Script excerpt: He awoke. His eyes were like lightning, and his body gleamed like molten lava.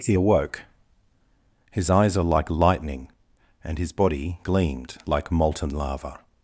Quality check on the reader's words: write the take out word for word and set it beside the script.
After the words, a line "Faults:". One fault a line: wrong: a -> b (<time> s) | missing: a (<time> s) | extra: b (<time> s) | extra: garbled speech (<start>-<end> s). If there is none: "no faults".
He awoke. His eyes are like lightning, and his body gleamed like molten lava.
Faults:
wrong: were -> are (2.2 s)